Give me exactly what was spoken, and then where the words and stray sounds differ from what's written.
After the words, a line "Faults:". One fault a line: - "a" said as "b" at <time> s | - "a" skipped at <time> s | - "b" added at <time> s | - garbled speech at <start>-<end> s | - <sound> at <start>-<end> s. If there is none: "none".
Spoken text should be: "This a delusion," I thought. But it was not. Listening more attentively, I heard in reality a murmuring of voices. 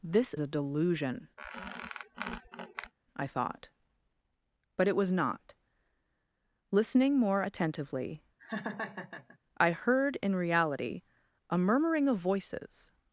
"This a delusion," I thought. But it was not. Listening more attentively, I heard in reality a murmuring of voices.
Faults:
- squeak at 1.4-2.9 s
- laugh at 8.4-9.4 s